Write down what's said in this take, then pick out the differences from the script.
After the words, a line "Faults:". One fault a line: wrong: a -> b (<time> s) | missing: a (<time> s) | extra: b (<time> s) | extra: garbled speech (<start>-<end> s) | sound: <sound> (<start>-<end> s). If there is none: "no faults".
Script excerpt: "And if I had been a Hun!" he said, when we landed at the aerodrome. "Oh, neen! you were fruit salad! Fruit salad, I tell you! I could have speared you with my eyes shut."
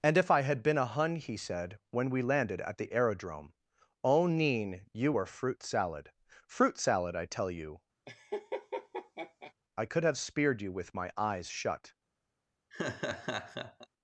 "And if I had been a Hun!" he said, when we landed at the aerodrome. "Oh, neen! you were fruit salad! Fruit salad, I tell you! I could have speared you with my eyes shut."
Faults:
sound: laugh (8.1-9.5 s)
sound: laugh (12.7-13.9 s)